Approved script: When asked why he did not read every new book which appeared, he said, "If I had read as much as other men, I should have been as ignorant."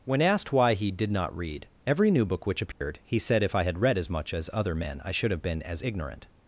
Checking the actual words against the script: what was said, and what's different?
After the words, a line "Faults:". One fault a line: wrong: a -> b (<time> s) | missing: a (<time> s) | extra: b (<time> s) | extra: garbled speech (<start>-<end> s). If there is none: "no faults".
When asked why he did not read every new book which appeared, he said, "If I had read as much as other men, I should have been as ignorant."
Faults:
no faults